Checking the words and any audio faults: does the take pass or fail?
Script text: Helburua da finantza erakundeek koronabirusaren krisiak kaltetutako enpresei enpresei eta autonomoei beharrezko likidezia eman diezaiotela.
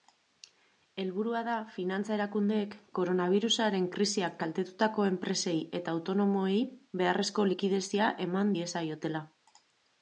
fail